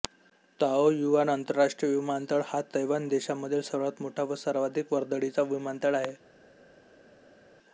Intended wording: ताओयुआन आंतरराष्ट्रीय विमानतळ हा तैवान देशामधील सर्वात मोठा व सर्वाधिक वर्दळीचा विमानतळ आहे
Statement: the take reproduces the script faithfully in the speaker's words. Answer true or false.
true